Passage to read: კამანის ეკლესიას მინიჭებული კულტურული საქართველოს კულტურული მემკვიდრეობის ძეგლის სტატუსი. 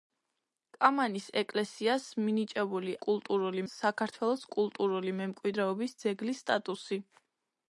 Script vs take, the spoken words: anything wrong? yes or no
no